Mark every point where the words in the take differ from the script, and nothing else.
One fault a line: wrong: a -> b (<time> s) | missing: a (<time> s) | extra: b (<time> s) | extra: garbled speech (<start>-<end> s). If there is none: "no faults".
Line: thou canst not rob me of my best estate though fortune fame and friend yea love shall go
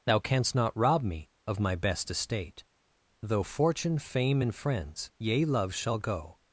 wrong: friend -> friends (4.5 s)